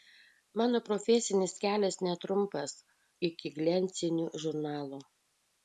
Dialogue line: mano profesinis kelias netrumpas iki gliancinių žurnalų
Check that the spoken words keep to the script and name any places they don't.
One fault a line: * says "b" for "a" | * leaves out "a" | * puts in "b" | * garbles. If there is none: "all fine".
all fine